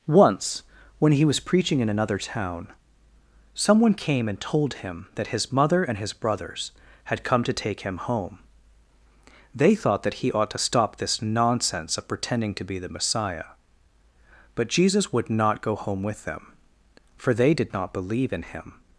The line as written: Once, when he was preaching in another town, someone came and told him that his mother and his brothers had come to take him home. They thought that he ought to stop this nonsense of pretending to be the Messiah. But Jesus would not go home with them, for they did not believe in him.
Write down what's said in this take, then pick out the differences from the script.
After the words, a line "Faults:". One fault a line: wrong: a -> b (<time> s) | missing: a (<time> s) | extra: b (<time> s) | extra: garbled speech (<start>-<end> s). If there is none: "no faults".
Once, when he was preaching in another town, someone came and told him that his mother and his brothers had come to take him home. They thought that he ought to stop this nonsense of pretending to be the Messiah. But Jesus would not go home with them, for they did not believe in him.
Faults:
no faults